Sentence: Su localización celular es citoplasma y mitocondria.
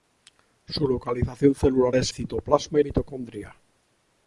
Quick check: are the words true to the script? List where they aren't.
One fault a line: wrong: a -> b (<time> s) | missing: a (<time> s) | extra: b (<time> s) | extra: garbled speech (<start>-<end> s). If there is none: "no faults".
no faults